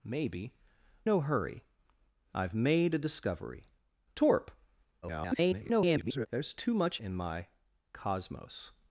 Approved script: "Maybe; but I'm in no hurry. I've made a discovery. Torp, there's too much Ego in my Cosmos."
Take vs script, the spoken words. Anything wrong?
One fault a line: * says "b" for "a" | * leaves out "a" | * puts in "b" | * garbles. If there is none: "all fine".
* leaves out "but I'm in"
* garbles
* leaves out "Ego"